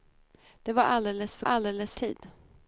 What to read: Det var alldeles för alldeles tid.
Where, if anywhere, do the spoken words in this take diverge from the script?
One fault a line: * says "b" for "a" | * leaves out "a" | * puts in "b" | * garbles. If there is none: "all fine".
all fine